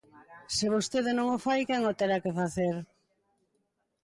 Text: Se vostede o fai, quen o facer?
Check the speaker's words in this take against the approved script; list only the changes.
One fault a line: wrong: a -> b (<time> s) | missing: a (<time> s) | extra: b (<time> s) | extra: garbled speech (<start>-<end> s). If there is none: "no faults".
extra: non (1.1 s)
extra: terá que (2.0 s)